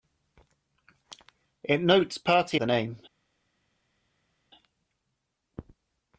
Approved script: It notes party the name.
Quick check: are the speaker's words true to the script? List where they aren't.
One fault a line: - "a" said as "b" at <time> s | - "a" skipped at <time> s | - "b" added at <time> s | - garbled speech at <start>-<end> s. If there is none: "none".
none